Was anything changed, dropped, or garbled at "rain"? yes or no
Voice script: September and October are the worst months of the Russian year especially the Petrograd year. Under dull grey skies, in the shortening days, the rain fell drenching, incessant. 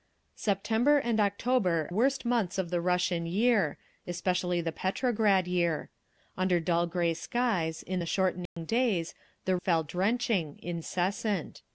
yes